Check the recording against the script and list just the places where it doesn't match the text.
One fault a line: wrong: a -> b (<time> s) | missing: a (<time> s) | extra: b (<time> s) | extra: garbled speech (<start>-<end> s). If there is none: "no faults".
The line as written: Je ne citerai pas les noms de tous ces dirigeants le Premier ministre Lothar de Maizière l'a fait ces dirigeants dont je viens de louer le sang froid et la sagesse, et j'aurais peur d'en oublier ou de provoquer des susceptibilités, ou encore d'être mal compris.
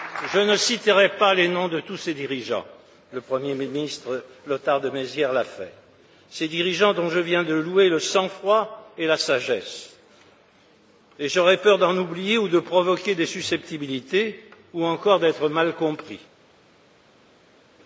no faults